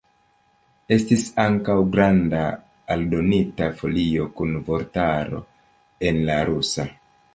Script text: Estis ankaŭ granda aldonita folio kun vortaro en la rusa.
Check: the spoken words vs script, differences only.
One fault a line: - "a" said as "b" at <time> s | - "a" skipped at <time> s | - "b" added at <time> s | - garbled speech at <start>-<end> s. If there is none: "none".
none